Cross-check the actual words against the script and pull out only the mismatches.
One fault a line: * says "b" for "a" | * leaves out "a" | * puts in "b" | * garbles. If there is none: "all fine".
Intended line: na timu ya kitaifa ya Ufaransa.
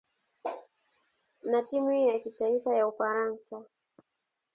all fine